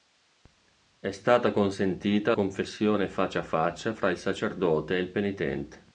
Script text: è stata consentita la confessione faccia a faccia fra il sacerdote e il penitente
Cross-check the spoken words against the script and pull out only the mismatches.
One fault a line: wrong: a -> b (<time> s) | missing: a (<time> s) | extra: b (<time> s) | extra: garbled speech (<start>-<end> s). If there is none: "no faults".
missing: la (2.3 s)